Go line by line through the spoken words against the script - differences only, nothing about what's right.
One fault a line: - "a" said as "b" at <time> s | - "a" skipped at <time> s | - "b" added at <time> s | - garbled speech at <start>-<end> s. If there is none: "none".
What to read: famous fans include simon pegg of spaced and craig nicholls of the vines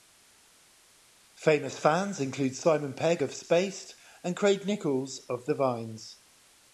none